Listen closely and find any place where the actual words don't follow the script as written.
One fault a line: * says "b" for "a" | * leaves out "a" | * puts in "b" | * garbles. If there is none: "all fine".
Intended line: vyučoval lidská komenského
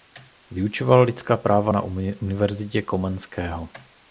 * puts in "práva na univerzitě"